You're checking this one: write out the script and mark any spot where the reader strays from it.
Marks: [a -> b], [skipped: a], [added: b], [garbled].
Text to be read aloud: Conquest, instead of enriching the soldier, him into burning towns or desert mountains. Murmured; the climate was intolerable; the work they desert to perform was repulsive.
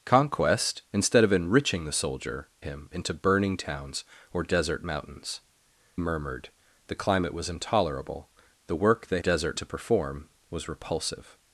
Conquest, instead of enriching the soldier, him into burning towns or desert mountains. Murmured; the climate was intolerable; the work they desert to perform was repulsive.